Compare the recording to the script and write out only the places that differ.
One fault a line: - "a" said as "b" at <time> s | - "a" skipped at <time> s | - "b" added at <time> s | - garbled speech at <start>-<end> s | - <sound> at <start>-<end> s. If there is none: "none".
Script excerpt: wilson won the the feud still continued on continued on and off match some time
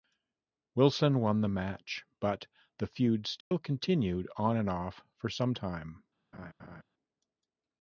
- "match but" added at 1.5 s
- dropout at 3.4-3.5 s
- "continued on" skipped at 4.6 s
- "match" said as "for" at 5.2 s
- laugh at 6.3-6.8 s